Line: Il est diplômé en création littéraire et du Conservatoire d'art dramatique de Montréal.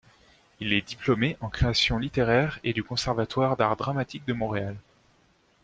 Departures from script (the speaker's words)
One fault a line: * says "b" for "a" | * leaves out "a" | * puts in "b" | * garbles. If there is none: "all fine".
all fine